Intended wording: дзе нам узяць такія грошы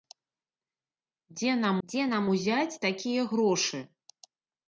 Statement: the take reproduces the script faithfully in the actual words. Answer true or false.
false